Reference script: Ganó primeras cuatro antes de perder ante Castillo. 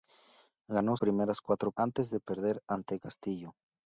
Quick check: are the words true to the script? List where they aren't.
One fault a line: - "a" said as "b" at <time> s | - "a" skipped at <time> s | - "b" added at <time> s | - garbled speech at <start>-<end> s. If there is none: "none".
none